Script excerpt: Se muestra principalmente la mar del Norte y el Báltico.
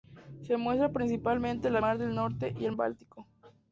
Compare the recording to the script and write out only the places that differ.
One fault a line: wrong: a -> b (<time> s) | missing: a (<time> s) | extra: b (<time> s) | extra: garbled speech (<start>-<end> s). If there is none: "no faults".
no faults